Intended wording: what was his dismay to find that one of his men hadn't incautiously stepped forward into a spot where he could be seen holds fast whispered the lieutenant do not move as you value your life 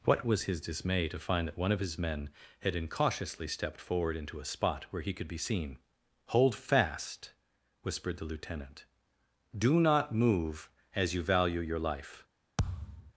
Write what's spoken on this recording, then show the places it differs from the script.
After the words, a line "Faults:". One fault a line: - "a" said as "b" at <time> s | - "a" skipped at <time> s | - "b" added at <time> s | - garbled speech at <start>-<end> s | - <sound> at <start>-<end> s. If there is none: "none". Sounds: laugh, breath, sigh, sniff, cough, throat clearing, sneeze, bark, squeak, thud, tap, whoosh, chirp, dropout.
what was his dismay to find that one of his men had incautiously stepped forward into a spot where he could be seen hold fast whispered the lieutenant do not move as you value your life
Faults:
- "hadn't" said as "had" at 2.6 s
- "holds" said as "hold" at 6.3 s
- thud at 12.6-13.1 s